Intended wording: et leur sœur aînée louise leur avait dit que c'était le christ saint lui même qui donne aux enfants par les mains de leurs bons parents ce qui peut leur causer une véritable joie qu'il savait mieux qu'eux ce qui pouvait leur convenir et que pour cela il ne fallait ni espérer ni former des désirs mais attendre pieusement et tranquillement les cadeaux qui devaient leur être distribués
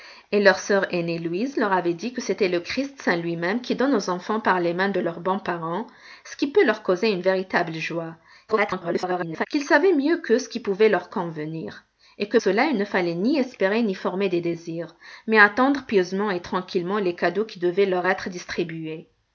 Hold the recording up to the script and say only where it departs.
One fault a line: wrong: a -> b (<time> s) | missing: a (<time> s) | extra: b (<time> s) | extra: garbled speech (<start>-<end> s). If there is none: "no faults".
extra: garbled speech (8.5-9.5 s)
missing: pour (12.4 s)